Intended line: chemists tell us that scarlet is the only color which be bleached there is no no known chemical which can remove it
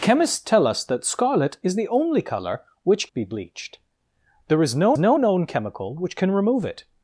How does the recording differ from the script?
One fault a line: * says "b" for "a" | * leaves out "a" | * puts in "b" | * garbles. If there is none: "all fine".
all fine